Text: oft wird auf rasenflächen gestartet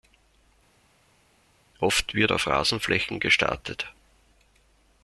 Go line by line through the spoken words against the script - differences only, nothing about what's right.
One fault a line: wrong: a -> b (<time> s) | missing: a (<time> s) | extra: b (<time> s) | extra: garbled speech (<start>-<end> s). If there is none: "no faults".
no faults